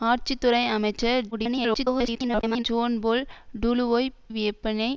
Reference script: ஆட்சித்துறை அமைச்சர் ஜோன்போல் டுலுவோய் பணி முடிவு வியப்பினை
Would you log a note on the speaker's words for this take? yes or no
yes